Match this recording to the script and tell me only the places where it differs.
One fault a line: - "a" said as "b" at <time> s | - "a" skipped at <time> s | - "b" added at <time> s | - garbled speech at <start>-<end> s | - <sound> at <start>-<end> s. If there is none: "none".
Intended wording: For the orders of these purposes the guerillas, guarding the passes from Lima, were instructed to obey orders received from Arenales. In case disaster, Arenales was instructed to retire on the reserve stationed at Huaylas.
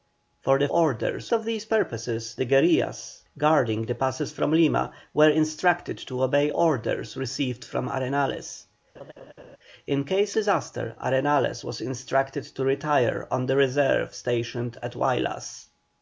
- laugh at 8.9-9.6 s